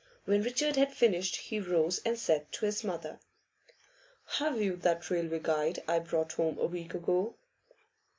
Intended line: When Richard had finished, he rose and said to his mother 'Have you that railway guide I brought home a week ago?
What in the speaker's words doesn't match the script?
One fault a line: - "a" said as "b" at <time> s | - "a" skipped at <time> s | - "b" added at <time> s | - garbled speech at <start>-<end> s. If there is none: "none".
none